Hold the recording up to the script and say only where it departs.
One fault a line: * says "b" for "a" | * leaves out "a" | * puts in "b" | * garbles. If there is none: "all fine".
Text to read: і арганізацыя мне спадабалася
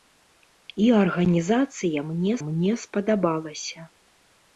* puts in "мне"